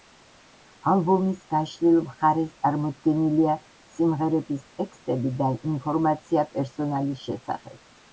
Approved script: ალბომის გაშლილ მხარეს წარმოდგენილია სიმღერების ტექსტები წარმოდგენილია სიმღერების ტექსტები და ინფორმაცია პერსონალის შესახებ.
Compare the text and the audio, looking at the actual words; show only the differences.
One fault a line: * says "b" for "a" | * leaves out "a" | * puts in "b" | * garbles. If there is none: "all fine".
* leaves out "წარმოდგენილია სიმღერების ტექსტები"